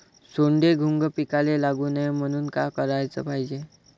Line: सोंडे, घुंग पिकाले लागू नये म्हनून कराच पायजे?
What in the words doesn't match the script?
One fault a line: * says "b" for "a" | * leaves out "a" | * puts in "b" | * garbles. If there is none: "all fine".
* puts in "का"